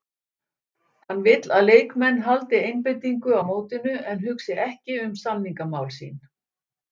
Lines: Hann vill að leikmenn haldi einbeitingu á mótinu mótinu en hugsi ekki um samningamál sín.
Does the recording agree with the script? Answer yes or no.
no